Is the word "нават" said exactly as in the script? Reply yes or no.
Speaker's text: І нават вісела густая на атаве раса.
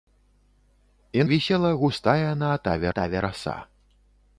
no